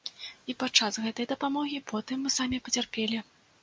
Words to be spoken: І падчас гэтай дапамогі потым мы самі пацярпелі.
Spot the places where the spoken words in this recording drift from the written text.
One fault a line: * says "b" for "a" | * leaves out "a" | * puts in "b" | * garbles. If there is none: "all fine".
all fine